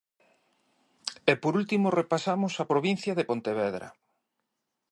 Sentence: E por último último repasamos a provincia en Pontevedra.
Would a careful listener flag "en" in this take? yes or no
yes